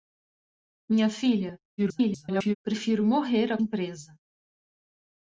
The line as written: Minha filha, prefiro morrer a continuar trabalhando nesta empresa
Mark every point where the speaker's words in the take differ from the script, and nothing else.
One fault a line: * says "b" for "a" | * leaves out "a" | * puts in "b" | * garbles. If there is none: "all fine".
* garbles
* leaves out "continuar trabalhando nesta"